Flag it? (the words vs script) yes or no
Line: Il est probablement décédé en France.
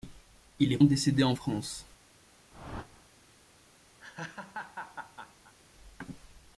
yes